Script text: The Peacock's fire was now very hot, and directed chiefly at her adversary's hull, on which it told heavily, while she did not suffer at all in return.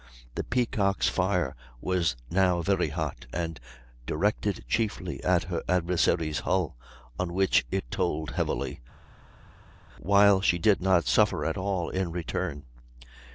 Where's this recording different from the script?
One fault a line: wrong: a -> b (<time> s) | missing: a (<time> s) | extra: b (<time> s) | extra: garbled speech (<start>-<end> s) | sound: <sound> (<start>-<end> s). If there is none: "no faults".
no faults